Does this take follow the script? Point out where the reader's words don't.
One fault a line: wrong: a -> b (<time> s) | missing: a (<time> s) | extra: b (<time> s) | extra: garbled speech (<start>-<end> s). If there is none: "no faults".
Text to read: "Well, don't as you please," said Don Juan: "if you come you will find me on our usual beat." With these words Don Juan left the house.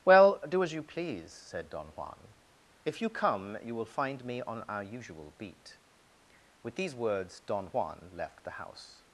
wrong: don't -> do (0.5 s)